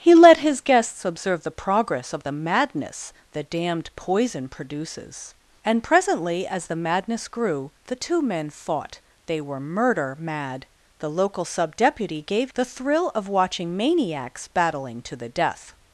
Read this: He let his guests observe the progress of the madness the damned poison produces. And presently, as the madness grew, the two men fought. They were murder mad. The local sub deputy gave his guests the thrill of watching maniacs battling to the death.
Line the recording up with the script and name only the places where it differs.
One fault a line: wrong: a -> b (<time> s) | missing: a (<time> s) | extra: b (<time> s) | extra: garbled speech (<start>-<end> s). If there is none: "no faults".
missing: his guests (12.5 s)